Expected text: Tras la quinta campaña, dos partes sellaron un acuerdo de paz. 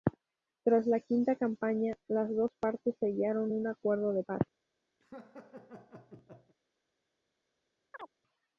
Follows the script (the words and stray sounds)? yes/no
no